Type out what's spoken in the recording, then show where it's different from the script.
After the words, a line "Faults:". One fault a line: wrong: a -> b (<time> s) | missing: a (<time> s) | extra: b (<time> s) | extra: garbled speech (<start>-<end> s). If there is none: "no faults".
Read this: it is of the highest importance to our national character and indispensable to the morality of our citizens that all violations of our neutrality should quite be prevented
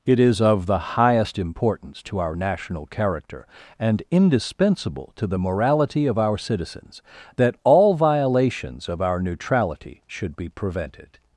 it is of the highest importance to our national character and indispensable to the morality of our citizens that all violations of our neutrality should be prevented
Faults:
missing: quite (10.4 s)